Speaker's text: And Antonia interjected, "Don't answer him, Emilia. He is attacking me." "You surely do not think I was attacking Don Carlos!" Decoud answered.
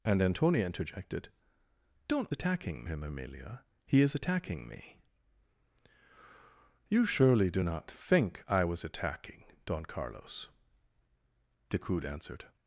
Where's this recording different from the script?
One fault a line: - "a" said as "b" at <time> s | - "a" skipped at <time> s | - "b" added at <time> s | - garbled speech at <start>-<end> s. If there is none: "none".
- "answer" said as "attacking" at 2.3 s